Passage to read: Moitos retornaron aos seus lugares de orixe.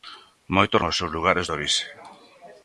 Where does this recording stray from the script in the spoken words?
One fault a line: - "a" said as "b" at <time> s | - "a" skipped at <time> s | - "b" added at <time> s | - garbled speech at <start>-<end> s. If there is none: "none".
- "retornaron" skipped at 0.8 s